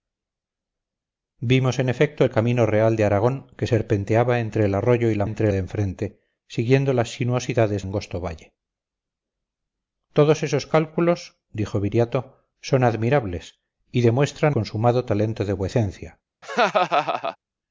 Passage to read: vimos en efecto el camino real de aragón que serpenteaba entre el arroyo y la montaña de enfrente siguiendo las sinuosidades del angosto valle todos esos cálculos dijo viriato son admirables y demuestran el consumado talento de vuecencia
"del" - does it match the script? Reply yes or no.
no